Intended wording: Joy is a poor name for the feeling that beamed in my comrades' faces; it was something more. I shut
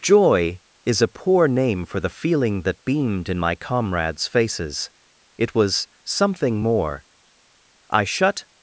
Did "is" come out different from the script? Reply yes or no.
no